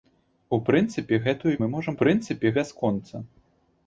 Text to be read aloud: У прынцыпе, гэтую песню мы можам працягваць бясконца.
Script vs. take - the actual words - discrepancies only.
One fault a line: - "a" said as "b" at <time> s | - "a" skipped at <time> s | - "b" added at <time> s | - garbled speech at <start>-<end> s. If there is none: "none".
- "песню" skipped at 1.5 s
- "працягваць" said as "прынцыпе" at 2.0 s